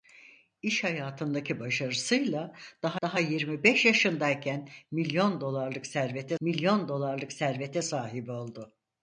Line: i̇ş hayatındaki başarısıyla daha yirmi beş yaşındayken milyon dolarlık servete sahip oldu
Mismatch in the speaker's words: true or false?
true